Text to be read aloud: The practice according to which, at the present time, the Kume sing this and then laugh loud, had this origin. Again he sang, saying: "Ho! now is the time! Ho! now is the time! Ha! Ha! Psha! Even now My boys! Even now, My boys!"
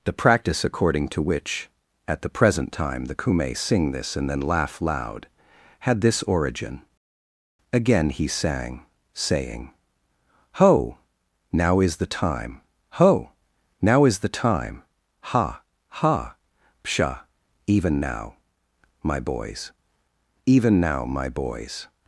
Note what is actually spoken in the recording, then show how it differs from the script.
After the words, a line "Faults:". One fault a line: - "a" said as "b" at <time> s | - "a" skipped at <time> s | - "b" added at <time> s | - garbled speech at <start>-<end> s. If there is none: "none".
The practice according to which, at the present time, the Kume sing this and then laugh loud, had this origin. Again he sang, saying: "Ho! now is the time! Ho! now is the time! Ha! Ha! Psha! Even now My boys! Even now, My boys!"
Faults:
none